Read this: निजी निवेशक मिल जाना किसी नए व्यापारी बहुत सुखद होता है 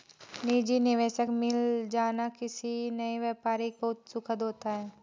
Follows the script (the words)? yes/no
yes